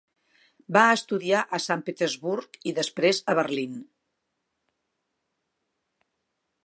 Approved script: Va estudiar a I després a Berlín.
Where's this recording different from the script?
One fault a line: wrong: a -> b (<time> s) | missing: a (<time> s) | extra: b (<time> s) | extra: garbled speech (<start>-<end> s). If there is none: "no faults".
extra: Sant Petersburg (1.6 s)